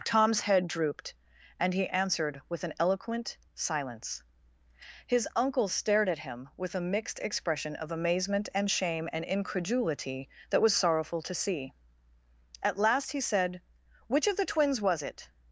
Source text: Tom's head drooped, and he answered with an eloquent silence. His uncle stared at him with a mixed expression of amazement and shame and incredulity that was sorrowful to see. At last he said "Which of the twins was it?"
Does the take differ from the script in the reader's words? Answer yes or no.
no